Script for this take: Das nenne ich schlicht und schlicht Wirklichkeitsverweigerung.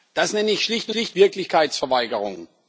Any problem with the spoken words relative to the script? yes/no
no